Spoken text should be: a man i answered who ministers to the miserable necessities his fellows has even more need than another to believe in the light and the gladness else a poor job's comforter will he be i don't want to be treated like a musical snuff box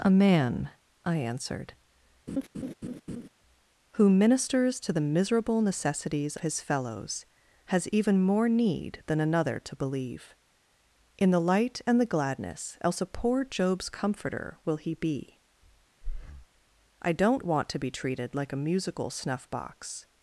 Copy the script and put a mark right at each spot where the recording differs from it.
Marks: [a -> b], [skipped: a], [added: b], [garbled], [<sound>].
a man i answered [laugh] who ministers to the miserable necessities his fellows has even more need than another to believe in the light and the gladness else a poor job's comforter will he be [breath] i don't want to be treated like a musical snuff box